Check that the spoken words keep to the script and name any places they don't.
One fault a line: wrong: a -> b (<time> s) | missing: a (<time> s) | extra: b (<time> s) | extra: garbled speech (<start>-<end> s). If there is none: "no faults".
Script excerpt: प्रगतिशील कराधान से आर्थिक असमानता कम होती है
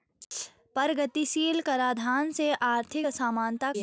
missing: कम होती (3.7 s)